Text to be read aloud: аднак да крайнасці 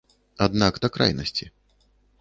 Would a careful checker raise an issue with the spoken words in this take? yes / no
no